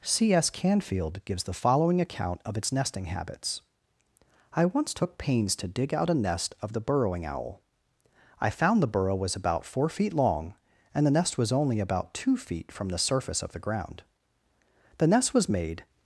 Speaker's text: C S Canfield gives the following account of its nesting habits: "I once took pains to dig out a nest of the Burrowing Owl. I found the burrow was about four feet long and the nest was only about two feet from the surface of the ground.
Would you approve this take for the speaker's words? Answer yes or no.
no